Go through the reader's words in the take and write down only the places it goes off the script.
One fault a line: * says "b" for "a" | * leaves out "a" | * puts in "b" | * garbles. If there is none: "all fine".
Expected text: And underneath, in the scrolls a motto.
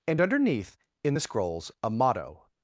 all fine